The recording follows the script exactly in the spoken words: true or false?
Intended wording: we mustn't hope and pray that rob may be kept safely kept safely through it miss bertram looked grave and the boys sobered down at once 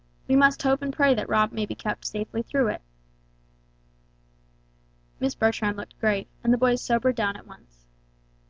false